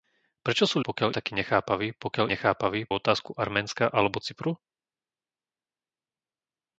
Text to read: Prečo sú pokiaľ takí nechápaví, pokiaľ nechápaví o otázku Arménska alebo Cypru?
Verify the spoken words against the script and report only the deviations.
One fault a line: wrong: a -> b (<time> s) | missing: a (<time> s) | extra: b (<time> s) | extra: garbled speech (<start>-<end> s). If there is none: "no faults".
no faults